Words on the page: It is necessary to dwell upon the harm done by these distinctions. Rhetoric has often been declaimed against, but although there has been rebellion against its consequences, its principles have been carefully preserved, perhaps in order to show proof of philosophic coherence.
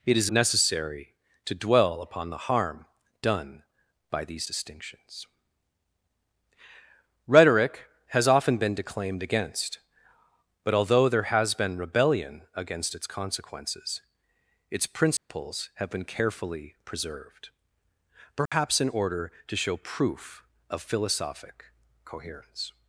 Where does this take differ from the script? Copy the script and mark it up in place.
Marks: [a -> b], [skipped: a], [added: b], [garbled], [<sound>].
It is necessary to dwell upon the harm done by these distinctions. Rhetoric has often been declaimed against, but although there has been rebellion against its consequences, its principles [dropout] have been carefully preserved, perhaps [dropout] in order to show proof of philosophic coherence.